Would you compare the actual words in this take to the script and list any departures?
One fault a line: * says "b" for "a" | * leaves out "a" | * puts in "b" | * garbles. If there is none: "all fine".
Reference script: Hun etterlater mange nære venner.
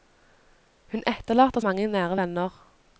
all fine